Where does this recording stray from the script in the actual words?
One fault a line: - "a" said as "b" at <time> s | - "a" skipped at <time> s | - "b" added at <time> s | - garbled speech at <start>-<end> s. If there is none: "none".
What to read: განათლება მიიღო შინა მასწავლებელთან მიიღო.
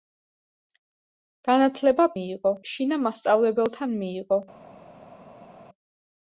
none